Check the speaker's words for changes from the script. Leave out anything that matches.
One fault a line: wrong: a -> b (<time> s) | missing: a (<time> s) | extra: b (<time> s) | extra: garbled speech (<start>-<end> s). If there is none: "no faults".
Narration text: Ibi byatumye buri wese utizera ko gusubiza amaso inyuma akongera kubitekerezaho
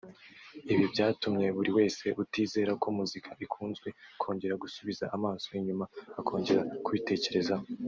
extra: muzika ikunzwe kongera (3.0 s)